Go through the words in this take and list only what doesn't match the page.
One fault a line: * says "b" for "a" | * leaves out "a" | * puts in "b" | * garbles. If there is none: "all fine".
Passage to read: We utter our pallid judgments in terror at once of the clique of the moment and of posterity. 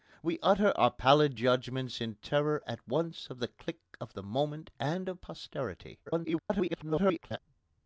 * garbles